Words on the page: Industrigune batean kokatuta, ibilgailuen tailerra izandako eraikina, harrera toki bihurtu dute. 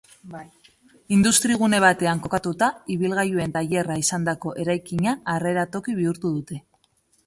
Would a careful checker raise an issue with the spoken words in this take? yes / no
no